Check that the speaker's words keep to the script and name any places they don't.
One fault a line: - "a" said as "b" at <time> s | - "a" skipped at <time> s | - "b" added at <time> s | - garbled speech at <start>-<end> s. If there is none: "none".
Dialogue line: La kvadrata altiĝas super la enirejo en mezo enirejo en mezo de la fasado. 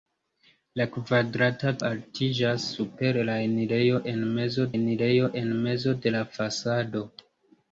none